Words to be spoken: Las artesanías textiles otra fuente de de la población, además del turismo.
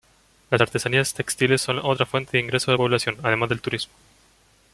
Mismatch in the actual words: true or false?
true